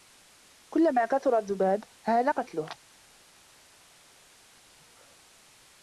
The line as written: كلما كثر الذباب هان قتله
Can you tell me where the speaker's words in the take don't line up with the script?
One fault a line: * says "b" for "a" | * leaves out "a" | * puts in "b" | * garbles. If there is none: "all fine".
all fine